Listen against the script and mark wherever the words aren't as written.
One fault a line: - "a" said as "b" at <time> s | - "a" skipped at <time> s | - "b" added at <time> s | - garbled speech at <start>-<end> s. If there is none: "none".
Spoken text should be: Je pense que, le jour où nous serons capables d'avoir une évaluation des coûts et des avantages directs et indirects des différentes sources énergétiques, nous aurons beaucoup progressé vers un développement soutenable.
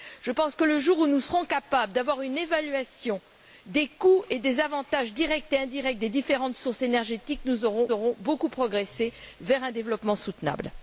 - "aurons" added at 7.9 s